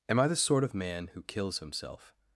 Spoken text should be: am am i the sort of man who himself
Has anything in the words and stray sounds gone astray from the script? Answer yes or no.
yes